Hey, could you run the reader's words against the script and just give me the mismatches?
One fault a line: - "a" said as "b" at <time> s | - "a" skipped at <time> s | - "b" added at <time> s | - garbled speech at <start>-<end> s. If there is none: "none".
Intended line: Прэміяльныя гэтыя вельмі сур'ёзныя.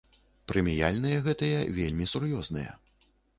none